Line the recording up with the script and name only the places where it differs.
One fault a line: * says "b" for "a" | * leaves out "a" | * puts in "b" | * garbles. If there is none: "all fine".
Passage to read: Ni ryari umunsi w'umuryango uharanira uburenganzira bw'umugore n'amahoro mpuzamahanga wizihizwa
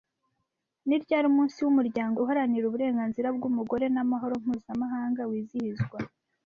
all fine